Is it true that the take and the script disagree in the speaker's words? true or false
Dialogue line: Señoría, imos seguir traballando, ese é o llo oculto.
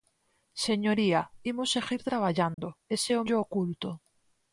false